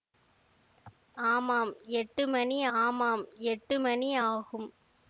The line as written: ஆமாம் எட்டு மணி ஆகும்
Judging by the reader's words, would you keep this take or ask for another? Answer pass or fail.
fail